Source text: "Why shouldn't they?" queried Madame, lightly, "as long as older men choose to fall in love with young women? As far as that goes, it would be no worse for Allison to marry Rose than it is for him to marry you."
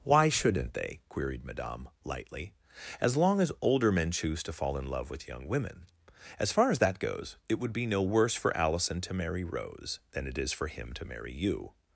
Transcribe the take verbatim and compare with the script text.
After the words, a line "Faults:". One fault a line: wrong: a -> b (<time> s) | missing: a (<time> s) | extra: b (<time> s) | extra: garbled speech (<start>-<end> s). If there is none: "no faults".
"Why shouldn't they?" queried Madame, lightly, "as long as older men choose to fall in love with young women? As far as that goes, it would be no worse for Allison to marry Rose than it is for him to marry you."
Faults:
no faults